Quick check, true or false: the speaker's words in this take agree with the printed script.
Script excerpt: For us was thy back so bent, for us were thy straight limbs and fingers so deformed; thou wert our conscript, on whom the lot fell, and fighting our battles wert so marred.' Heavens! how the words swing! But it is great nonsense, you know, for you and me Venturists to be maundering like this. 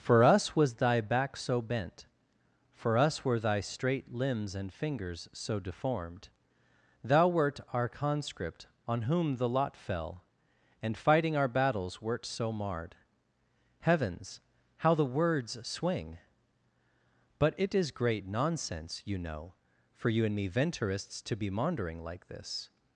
true